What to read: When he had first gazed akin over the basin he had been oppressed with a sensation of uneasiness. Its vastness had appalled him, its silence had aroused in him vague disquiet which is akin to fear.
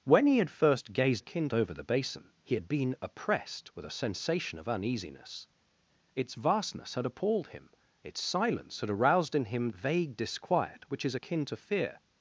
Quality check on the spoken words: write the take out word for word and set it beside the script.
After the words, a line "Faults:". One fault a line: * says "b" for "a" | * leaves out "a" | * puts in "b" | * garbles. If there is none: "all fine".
When he had first gazed akin over the basin he had been oppressed with a sensation of uneasiness. Its vastness had appalled him, its silence had aroused in him vague disquiet which is akin to fear.
Faults:
all fine